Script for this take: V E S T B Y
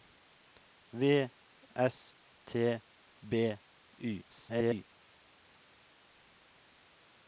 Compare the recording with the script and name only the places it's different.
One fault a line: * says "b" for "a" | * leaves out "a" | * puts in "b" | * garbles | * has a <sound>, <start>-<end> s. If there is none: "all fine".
* leaves out "E"
* garbles